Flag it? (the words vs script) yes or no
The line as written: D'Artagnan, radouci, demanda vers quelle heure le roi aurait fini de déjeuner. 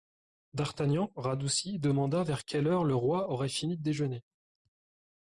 no